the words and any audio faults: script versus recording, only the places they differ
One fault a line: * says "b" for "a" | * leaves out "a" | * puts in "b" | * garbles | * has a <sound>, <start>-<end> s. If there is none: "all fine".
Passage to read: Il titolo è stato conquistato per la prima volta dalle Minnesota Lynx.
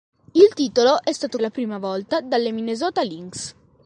* leaves out "conquistato per"